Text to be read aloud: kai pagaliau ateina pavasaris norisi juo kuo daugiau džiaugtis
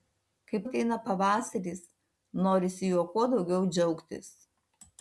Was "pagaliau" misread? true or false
true